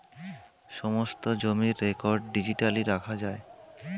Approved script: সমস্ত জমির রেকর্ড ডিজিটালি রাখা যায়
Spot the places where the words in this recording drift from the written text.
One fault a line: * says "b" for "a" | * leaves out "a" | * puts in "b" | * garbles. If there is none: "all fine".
all fine